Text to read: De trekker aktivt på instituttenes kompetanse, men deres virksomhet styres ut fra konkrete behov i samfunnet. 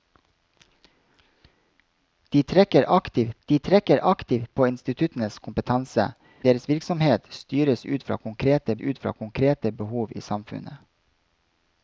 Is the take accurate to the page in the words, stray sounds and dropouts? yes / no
no